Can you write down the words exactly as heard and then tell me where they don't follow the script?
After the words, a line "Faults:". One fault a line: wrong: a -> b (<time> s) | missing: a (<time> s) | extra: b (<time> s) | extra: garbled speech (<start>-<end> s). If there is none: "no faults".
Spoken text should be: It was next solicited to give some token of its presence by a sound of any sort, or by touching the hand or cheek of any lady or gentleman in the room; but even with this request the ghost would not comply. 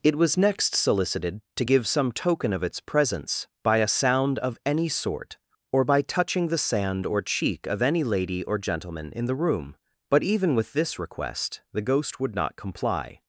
It was next solicited to give some token of its presence by a sound of any sort, or by touching the sand or cheek of any lady or gentleman in the room; but even with this request the ghost would not comply.
Faults:
wrong: hand -> sand (6.6 s)